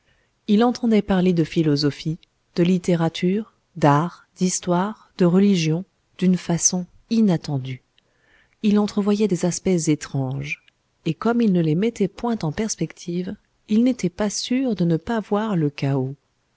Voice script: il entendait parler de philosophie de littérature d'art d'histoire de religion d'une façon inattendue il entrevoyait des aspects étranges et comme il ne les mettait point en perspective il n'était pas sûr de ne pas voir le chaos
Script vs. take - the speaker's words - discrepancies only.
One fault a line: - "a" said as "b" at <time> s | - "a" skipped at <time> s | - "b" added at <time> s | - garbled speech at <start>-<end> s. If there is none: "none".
none